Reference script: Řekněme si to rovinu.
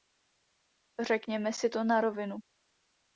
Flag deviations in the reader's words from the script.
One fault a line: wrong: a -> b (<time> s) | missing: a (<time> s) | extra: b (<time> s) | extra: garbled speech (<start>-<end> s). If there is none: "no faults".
extra: na (1.8 s)